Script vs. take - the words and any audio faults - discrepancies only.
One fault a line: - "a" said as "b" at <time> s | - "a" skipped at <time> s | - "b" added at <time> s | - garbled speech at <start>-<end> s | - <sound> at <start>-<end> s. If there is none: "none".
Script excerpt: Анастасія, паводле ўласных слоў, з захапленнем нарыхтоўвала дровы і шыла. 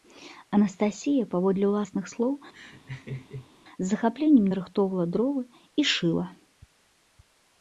- laugh at 2.5-3.5 s